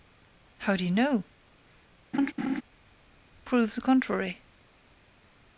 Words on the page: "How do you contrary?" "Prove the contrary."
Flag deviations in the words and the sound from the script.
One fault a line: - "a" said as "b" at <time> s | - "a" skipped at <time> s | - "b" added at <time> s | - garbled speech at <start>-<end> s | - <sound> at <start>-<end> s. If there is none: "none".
- "contrary" said as "know" at 0.9 s
- laugh at 2.1-2.6 s